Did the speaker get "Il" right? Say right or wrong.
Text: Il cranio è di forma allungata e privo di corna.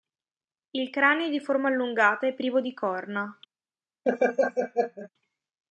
right